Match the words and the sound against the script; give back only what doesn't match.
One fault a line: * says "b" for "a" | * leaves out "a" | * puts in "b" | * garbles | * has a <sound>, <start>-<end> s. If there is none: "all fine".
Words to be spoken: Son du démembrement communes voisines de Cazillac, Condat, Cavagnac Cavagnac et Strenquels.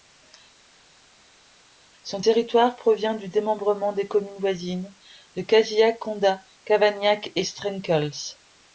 * puts in "territoire provient"
* puts in "des"
* leaves out "Cavagnac"